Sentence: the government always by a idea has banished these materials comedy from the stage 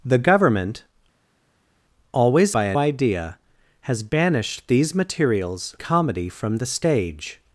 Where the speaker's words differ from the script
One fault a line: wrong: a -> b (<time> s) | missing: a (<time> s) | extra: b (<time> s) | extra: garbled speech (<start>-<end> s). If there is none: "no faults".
no faults